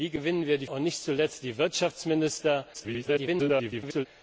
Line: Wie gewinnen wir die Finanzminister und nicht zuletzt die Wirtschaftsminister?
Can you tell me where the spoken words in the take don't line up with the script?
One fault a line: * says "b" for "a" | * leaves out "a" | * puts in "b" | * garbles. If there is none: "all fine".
* leaves out "Finanzminister"
* garbles